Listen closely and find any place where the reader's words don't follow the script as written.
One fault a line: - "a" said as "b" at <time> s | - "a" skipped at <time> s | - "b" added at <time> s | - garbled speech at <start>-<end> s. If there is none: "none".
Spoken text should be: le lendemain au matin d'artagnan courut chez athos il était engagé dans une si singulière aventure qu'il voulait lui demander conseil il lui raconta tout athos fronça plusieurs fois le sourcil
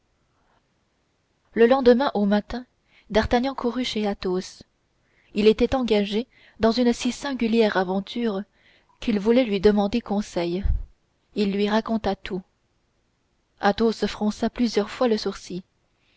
none